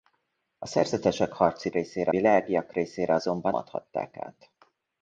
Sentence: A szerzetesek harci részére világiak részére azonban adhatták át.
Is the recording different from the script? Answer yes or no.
no